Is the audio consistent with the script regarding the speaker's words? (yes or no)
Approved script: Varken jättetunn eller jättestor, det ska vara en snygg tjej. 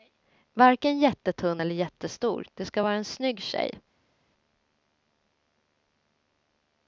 yes